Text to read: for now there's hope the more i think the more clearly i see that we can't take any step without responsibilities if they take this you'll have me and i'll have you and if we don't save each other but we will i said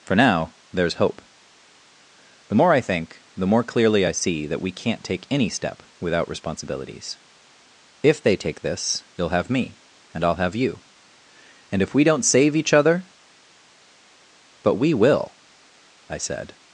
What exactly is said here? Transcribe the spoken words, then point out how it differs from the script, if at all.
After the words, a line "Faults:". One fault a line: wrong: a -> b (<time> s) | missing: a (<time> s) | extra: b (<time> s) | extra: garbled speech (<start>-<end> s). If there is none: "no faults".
for now there's hope the more i think the more clearly i see that we can't take any step without responsibilities if they take this you'll have me and i'll have you and if we don't save each other but we will i said
Faults:
no faults